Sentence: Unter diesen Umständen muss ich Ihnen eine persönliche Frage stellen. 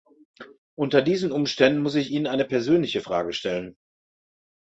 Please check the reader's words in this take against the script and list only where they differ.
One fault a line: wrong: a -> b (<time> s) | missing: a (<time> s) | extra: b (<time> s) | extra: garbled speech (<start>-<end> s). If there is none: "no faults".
no faults